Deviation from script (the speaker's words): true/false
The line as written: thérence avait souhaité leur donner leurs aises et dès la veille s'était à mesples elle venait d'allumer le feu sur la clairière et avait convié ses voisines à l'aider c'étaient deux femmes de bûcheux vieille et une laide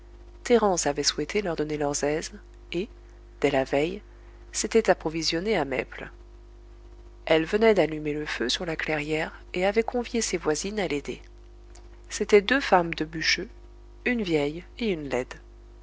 true